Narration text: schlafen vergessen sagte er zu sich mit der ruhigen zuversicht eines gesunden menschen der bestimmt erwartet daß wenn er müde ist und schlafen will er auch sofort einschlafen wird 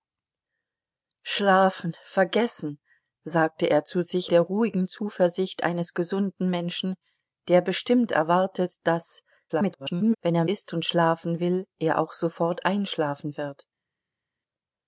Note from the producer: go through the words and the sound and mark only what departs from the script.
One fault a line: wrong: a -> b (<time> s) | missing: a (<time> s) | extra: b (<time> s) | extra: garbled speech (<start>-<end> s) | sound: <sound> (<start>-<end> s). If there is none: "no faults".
missing: mit (4.3 s)
extra: garbled speech (9.5-10.1 s)
missing: müde (10.4 s)